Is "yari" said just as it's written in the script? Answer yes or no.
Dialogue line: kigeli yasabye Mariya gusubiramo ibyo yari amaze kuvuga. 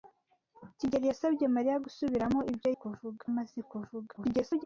no